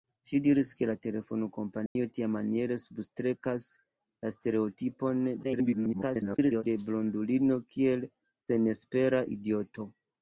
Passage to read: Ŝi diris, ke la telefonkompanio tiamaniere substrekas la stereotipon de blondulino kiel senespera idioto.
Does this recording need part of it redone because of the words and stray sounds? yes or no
yes